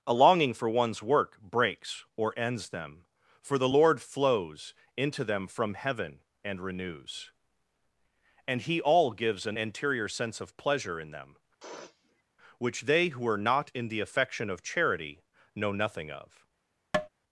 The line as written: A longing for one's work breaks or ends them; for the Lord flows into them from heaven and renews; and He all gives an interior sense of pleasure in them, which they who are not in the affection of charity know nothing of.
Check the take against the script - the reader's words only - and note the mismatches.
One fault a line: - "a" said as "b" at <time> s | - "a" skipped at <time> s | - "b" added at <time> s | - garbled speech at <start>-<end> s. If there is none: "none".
none